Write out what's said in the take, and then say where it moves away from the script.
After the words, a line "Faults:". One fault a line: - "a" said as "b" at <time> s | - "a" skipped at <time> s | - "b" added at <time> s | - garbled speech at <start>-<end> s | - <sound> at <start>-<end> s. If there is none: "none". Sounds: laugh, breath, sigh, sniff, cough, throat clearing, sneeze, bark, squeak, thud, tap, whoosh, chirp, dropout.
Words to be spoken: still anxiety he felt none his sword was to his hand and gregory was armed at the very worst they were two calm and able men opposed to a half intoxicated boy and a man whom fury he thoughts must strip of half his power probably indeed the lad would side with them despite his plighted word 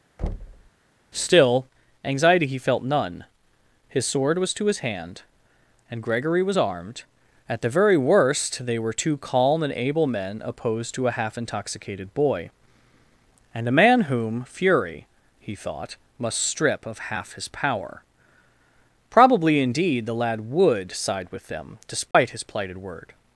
still anxiety he felt none his sword was to his hand and gregory was armed at the very worst they were two calm and able men opposed to a half intoxicated boy and a man whom fury he thought must strip of half his power probably indeed the lad would side with them despite his plighted word
Faults:
- thud at 0.2-0.7 s
- "thoughts" said as "thought" at 15.5 s
- dropout at 22.1-22.1 s